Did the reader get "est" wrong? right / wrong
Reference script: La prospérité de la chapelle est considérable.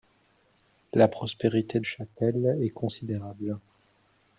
right